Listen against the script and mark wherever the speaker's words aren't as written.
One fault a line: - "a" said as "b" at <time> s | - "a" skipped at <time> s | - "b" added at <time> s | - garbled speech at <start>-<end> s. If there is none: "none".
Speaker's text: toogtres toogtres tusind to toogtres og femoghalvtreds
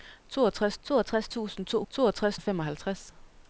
none